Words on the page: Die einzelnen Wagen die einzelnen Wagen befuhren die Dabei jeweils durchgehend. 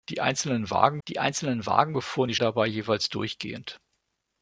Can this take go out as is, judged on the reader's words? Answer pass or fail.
pass